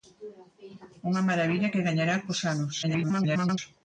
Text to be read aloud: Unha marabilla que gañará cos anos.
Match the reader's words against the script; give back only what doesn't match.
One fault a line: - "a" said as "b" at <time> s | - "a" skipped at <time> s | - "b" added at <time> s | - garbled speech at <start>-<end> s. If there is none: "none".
- garbled speech at 2.8-3.6 s